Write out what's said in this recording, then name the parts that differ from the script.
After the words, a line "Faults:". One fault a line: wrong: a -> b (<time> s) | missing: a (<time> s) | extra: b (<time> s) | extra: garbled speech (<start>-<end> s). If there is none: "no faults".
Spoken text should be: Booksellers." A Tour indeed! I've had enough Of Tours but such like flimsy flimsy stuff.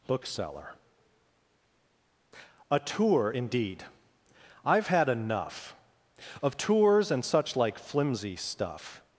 Bookseller." A Tour indeed! I've had enough Of Tours and such like flimsy stuff.
Faults:
wrong: Booksellers -> Bookseller (0.1 s)
wrong: but -> and (7.1 s)
missing: flimsy (8.4 s)